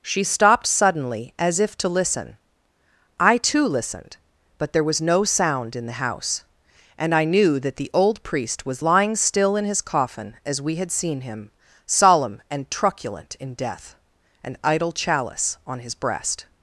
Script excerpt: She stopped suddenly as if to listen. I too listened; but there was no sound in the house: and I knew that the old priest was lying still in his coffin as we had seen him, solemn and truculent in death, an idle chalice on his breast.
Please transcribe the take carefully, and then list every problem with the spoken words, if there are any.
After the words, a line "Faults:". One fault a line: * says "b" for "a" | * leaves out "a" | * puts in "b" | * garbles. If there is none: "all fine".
She stopped suddenly as if to listen. I too listened; but there was no sound in the house: and I knew that the old priest was lying still in his coffin as we had seen him, solemn and truculent in death, an idle chalice on his breast.
Faults:
all fine